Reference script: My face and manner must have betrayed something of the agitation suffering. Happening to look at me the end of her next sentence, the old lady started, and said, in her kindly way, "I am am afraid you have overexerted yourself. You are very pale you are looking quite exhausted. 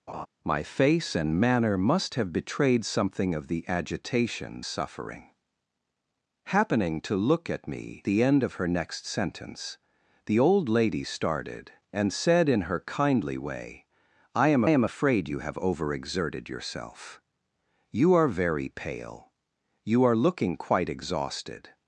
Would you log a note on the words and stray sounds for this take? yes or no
yes